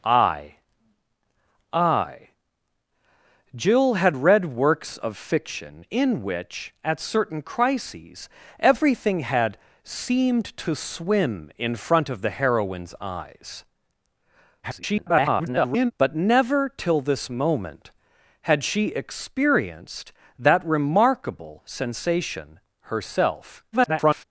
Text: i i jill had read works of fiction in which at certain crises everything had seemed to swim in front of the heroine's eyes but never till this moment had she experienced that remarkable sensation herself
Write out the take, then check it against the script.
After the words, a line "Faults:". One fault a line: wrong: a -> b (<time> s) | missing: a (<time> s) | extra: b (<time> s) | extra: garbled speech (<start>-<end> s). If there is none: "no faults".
i i jill had read works of fiction in which at certain crises everything had seemed to swim in front of the heroine's eyes [garbled] but never till this moment had she experienced that remarkable sensation herself [garbled]
Faults:
extra: garbled speech (14.6-15.9 s)
extra: garbled speech (23.7-24.2 s)